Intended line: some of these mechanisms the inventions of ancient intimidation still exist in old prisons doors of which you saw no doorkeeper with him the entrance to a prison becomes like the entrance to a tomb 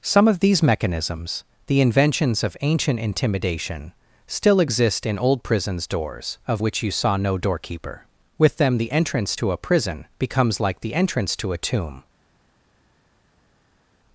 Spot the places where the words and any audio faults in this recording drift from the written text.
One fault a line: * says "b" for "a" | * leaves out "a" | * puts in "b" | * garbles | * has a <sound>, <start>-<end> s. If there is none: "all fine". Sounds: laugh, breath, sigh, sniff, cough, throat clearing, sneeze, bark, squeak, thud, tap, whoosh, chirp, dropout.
* says "them" for "him"